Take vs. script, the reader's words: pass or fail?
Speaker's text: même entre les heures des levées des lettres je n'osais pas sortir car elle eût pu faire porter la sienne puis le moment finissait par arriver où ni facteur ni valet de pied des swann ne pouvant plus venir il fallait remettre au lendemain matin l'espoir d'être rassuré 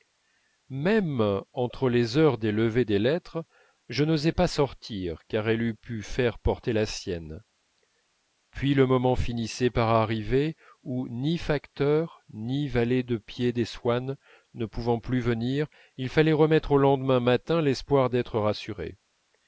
pass